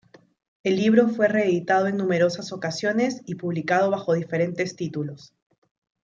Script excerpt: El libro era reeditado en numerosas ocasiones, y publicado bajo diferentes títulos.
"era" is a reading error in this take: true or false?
true